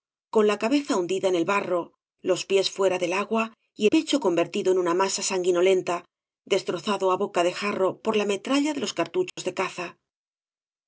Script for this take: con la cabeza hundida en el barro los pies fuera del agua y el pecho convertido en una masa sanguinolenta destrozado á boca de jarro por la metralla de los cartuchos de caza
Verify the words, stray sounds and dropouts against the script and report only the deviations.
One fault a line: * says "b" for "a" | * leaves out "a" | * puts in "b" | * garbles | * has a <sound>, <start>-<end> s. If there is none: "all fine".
* leaves out "el"
* has a dropout, 9.3-9.4 s